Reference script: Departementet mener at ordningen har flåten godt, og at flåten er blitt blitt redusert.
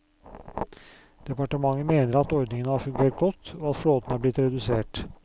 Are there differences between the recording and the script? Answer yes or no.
yes